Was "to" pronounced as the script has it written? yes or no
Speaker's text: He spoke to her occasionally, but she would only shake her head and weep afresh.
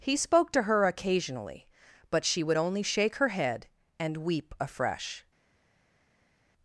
yes